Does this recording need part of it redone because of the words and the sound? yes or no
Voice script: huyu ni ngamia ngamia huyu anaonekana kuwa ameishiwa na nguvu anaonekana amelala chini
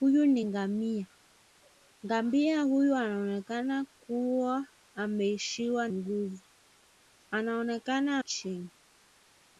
yes